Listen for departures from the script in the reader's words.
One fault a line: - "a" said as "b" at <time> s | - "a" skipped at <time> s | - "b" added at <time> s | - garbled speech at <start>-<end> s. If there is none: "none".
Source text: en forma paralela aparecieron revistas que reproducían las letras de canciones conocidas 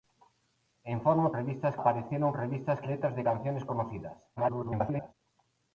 - "paralela" said as "revistas" at 1.3 s
- "que reproducían las" skipped at 2.8 s
- garbled speech at 4.4-5.1 s